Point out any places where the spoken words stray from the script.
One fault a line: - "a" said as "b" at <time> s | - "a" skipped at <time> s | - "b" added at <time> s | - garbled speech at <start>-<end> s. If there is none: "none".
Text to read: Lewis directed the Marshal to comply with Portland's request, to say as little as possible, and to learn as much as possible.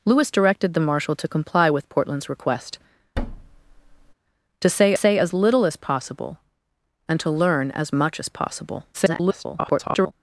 - "say" added at 4.9 s
- garbled speech at 8.9-10.1 s